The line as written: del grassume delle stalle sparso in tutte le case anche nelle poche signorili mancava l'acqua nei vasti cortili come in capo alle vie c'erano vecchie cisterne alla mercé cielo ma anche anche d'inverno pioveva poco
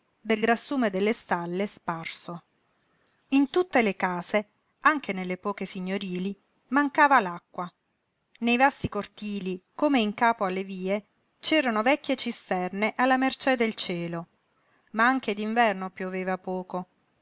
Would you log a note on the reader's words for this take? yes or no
yes